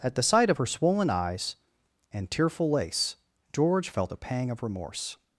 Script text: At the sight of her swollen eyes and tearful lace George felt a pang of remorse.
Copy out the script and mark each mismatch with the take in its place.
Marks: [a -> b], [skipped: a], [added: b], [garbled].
At the sight of her swollen eyes and tearful lace George felt a pang of remorse.